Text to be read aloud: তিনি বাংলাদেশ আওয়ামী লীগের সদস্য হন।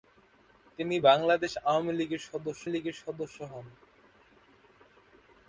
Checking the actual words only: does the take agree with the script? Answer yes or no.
no